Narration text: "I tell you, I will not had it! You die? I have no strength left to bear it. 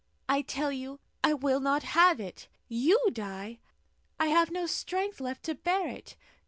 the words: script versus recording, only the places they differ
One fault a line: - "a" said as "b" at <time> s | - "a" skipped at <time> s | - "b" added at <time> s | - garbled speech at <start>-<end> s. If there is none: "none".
- "had" said as "have" at 1.8 s